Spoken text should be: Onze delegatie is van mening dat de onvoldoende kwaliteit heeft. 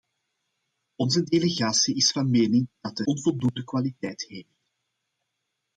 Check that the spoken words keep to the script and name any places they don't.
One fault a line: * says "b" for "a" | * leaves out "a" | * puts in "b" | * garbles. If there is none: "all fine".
all fine